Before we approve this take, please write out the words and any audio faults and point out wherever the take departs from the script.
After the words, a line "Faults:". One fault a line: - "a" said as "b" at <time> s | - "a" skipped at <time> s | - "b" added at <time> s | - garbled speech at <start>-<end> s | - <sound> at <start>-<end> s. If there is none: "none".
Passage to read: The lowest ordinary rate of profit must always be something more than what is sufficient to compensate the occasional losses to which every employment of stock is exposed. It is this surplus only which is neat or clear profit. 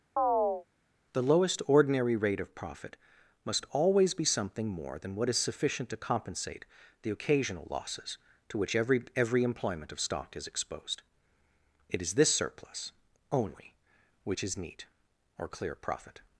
The lowest ordinary rate of profit must always be something more than what is sufficient to compensate the occasional losses to which every every employment of stock is exposed. It is this surplus only which is neat or clear profit.
Faults:
- chirp at 0.2-0.7 s
- "every" added at 9.1 s